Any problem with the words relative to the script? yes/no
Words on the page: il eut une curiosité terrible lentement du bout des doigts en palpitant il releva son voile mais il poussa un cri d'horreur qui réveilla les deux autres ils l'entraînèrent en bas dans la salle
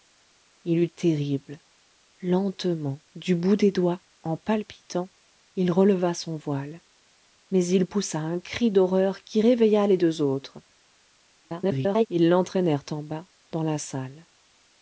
yes